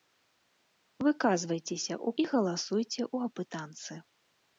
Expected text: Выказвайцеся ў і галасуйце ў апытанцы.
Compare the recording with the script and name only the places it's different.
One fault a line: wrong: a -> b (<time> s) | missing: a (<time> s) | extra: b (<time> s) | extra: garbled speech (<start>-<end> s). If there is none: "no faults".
no faults